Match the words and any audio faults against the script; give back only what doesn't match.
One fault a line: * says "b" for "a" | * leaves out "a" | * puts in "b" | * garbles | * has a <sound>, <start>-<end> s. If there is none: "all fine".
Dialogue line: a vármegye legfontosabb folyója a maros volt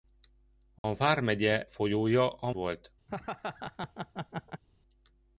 * has a dropout, 0.8-0.8 s
* leaves out "legfontosabb"
* leaves out "maros"
* has a laugh, 3.1-4.6 s